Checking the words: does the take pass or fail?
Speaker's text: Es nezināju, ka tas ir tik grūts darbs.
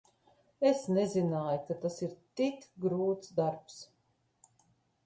pass